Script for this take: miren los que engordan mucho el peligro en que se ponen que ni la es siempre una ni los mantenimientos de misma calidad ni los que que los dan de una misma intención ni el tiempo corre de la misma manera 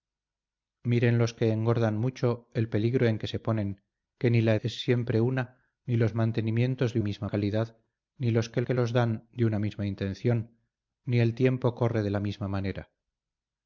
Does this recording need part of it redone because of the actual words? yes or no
no